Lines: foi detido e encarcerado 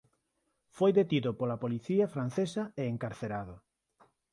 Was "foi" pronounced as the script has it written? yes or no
yes